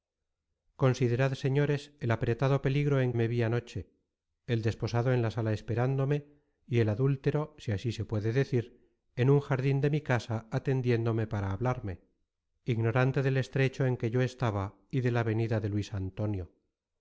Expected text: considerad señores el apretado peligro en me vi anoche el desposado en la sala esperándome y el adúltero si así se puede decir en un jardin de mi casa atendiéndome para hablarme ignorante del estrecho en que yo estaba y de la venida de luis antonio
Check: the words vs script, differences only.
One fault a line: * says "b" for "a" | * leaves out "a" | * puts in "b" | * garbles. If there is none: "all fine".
all fine